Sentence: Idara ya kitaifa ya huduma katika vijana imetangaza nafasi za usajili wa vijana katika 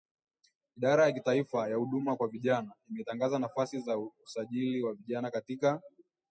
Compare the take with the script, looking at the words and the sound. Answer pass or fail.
fail